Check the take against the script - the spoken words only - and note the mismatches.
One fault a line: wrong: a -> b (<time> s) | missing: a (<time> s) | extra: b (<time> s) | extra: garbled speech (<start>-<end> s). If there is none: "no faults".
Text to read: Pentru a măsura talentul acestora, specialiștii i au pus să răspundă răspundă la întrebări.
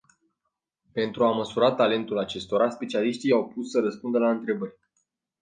missing: răspundă (4.2 s)